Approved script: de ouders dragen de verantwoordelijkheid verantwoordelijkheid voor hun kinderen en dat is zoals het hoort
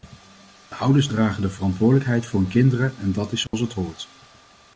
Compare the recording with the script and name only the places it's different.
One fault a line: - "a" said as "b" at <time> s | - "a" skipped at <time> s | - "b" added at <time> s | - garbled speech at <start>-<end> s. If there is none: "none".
- "verantwoordelijkheid" skipped at 2.2 s